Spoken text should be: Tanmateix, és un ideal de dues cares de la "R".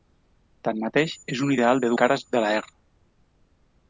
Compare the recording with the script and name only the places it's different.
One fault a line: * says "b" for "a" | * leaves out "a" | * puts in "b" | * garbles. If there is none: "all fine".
* leaves out "dues"